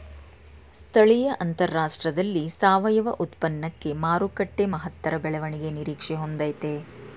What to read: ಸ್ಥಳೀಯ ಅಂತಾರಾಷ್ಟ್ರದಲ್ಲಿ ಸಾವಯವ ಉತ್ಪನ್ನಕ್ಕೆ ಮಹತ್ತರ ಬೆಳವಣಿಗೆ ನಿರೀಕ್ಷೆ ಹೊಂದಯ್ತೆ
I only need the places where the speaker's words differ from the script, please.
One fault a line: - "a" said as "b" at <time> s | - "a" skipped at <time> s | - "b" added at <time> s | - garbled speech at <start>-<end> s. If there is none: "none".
- "ಮಾರುಕಟ್ಟೆ" added at 4.0 s